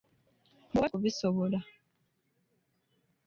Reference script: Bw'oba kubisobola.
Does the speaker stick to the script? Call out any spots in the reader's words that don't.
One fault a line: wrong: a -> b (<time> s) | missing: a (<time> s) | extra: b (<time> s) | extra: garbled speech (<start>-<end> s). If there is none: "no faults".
no faults